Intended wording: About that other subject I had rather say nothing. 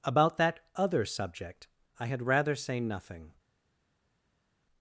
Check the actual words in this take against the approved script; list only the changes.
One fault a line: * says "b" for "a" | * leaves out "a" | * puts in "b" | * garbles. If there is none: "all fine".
all fine